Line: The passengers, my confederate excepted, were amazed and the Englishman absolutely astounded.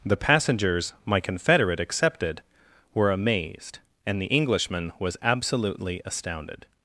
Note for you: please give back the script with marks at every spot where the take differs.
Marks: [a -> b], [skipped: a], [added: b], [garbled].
The passengers, my confederate excepted, were amazed and the Englishman [added: was] absolutely astounded.